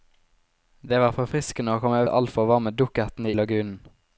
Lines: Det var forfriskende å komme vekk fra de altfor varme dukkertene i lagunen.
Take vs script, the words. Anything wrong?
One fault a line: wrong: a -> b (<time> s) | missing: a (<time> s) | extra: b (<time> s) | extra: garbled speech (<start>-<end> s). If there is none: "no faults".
missing: vekk fra (2.0 s)
missing: i (3.3 s)